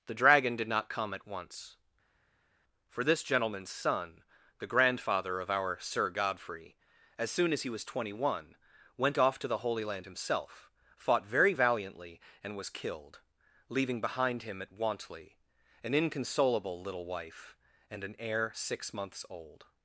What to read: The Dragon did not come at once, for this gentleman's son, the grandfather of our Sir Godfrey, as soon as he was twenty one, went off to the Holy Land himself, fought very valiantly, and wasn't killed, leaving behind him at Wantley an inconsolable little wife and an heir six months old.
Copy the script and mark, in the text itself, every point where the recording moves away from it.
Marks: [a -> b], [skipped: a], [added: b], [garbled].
The Dragon did not come at once, for this gentleman's son, the grandfather of our Sir Godfrey, as soon as he was twenty one, went off to the Holy Land himself, fought very valiantly, and [wasn't -> was] killed, leaving behind him at Wantley an inconsolable little wife and an heir six months old.